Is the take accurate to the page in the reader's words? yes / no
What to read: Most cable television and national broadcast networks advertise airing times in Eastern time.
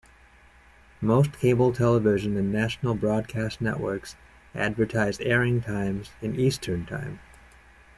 yes